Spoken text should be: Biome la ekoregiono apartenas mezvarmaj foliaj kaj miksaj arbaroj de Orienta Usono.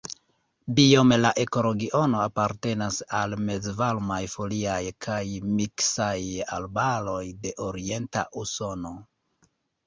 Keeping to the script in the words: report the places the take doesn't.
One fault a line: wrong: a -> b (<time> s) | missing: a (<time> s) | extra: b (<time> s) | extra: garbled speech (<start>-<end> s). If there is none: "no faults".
extra: al (3.2 s)